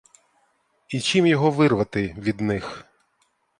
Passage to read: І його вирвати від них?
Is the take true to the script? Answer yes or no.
no